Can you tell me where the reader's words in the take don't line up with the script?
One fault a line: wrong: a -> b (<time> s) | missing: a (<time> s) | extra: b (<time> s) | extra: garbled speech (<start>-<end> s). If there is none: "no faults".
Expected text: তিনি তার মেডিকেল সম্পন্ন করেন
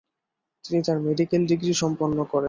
extra: ডিগ্রি (1.5 s)